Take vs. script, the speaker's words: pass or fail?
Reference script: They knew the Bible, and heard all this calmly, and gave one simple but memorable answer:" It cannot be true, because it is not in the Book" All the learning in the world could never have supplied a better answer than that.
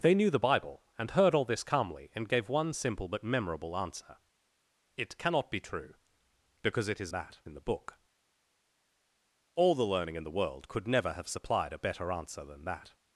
fail